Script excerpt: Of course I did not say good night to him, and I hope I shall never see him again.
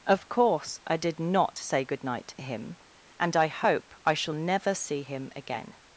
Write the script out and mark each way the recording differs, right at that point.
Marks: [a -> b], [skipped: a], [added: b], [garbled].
Of course I did not say good night to him, and I hope I shall never see him again.